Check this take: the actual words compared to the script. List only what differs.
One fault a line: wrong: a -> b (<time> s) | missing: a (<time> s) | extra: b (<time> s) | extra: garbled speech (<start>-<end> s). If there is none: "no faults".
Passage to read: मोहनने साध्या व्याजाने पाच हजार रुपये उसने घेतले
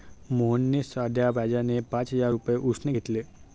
no faults